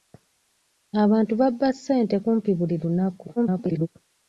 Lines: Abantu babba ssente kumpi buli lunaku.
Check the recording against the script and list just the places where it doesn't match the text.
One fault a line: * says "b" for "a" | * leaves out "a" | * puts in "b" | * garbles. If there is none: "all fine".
* garbles